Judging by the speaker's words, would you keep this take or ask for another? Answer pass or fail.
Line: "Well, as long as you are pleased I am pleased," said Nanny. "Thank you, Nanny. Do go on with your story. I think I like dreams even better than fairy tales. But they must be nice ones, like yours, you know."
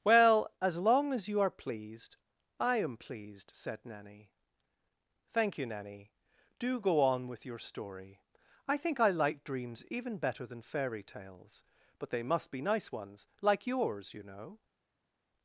pass